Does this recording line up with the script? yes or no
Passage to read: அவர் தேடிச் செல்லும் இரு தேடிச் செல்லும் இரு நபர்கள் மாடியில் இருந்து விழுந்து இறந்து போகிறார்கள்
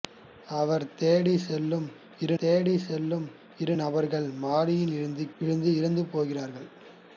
yes